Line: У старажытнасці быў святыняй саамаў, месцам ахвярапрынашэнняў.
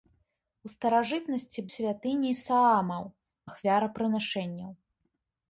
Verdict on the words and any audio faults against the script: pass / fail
fail